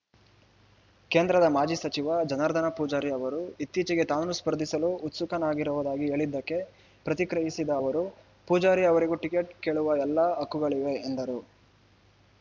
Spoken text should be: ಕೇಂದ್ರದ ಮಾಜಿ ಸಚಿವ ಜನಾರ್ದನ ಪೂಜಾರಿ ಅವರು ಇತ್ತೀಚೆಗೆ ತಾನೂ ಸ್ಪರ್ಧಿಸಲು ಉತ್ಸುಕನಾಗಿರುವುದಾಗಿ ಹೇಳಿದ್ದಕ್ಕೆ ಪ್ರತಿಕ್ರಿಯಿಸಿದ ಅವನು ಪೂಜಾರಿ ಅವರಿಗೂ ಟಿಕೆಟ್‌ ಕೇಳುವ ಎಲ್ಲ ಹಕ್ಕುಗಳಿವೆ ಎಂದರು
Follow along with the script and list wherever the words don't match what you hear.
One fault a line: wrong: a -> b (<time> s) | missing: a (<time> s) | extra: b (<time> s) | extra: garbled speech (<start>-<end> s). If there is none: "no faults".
wrong: ಅವನು -> ಅವರು (7.8 s)